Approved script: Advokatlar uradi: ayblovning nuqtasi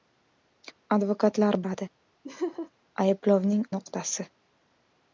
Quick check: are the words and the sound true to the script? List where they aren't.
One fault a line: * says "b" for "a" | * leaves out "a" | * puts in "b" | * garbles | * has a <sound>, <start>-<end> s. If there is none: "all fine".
* has a laugh, 2.2-2.7 s